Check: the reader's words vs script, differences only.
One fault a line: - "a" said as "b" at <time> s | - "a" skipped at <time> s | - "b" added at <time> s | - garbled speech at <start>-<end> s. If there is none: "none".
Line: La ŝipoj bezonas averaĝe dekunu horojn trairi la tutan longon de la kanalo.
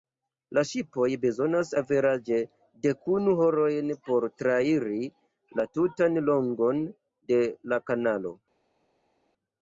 - "por" added at 4.1 s